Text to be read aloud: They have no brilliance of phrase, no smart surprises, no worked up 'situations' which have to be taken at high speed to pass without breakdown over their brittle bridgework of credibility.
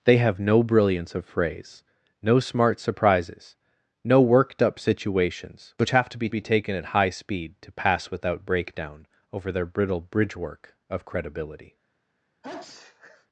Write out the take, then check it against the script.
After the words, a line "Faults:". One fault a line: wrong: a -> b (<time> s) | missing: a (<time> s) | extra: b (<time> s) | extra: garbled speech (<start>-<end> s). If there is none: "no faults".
They have no brilliance of phrase, no smart surprises, no worked up 'situations' which have to be be taken at high speed to pass without breakdown over their brittle bridgework of credibility.
Faults:
extra: be (6.3 s)